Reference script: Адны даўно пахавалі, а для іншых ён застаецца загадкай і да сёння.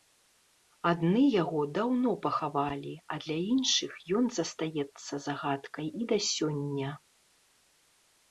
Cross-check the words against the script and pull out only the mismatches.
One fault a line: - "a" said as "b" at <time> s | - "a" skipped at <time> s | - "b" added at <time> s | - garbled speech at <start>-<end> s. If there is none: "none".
- "яго" added at 1.4 s